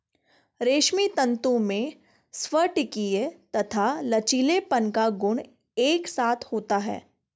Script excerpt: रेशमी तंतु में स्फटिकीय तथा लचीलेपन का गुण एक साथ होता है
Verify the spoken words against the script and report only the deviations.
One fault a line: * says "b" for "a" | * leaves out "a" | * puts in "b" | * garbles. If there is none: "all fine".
all fine